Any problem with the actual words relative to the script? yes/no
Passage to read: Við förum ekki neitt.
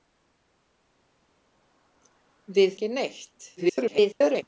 yes